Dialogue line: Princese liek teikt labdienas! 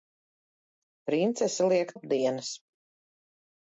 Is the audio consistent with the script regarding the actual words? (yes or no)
no